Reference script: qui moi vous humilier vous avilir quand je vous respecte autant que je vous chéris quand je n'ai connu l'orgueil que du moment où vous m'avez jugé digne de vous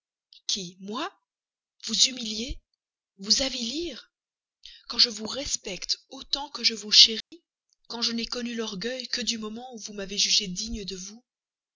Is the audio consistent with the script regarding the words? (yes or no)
yes